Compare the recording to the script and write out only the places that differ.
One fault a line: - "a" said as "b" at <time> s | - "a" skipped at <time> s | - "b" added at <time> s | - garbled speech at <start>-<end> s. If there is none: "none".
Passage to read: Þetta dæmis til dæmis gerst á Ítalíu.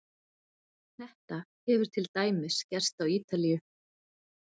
- "dæmis" said as "hefur" at 1.7 s